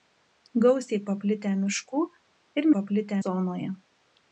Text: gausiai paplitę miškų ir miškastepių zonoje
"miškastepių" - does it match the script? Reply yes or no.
no